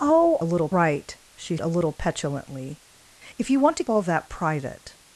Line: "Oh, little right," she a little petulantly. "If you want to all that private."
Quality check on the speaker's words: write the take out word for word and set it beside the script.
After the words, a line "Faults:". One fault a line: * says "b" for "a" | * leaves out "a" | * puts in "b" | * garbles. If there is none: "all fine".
"Oh, little right," she a little petulantly. "If you want to all that private."
Faults:
all fine